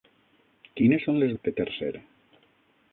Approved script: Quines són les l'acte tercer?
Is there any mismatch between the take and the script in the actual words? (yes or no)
no